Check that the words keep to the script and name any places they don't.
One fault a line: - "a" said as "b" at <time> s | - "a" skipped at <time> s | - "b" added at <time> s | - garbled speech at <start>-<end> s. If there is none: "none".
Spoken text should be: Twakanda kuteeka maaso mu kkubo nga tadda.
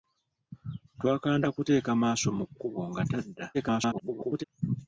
- garbled speech at 3.5-4.4 s